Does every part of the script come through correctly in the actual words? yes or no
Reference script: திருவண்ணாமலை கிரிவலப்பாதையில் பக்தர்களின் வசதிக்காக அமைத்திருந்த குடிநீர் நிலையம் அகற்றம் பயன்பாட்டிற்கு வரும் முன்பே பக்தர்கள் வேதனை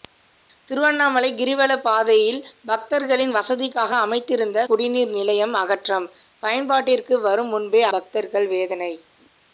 yes